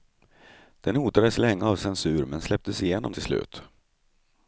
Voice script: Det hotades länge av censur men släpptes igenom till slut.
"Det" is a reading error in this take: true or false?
true